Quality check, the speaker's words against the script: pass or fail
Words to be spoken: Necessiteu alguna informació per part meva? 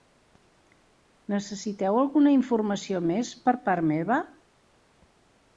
fail